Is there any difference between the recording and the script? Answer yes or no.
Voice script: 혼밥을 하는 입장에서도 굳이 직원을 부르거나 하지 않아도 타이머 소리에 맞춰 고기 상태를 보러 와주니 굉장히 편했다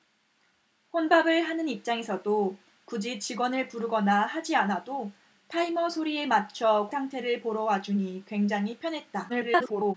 yes